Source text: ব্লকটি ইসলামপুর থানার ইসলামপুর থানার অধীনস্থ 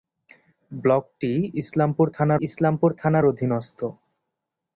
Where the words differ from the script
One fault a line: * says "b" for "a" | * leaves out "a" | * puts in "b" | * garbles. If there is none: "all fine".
all fine